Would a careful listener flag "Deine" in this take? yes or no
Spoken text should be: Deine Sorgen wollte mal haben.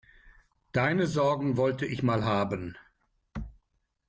no